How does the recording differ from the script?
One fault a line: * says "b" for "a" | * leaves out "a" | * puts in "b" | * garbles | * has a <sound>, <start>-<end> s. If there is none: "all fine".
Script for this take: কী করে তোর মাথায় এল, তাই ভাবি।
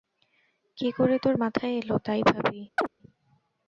* has a chirp, 2.8-2.9 s